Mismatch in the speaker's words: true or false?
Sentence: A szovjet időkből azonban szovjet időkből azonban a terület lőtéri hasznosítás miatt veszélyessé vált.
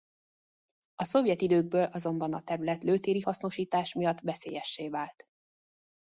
true